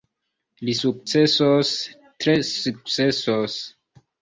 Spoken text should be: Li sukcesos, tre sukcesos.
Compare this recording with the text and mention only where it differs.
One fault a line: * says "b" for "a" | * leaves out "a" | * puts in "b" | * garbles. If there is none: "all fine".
all fine